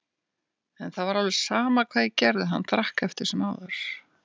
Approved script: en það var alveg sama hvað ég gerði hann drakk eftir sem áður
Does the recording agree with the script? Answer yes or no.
yes